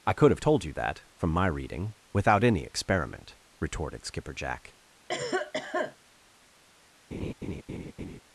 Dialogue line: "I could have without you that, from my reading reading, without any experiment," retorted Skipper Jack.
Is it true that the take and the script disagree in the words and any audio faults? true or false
true